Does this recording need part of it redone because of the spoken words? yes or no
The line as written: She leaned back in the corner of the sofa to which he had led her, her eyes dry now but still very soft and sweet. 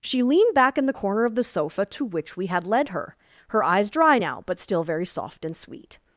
yes